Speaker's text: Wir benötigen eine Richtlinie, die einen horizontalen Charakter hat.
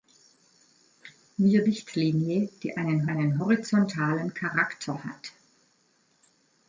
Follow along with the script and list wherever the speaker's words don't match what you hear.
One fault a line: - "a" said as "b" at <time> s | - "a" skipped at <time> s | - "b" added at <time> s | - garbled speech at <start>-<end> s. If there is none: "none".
- "benötigen eine" skipped at 1.6 s
- "einen" added at 3.1 s